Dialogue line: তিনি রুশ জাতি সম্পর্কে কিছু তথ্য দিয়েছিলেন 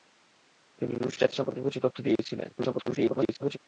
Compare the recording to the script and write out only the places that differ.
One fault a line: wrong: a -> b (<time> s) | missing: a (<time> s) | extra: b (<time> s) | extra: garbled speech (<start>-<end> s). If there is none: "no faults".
extra: garbled speech (2.6-3.6 s)